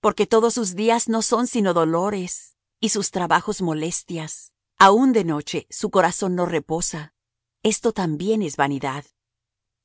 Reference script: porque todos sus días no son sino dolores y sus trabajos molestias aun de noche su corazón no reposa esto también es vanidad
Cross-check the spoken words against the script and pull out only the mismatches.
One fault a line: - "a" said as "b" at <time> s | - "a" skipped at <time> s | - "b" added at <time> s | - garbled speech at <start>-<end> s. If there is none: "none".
none